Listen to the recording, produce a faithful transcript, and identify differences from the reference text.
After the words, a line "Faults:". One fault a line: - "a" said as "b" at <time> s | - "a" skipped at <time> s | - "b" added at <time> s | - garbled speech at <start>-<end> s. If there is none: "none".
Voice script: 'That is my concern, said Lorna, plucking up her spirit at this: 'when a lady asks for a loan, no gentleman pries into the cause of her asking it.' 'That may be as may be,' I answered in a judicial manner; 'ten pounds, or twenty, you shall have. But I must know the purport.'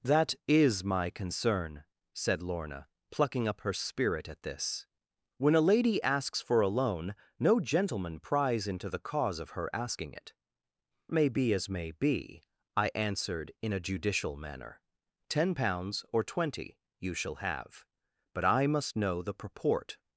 'That is my concern, said Lorna, plucking up her spirit at this: 'when a lady asks for a loan, no gentleman pries into the cause of her asking it.' 'May be as may be,' I answered in a judicial manner; 'ten pounds, or twenty, you shall have. But I must know the purport.'
Faults:
- "That" skipped at 10.3 s